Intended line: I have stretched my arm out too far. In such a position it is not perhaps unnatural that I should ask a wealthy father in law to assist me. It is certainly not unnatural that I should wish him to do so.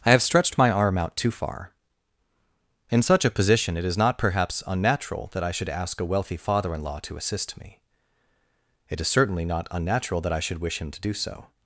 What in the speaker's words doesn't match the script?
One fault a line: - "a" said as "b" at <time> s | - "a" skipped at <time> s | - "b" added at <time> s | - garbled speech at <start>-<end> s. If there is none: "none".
none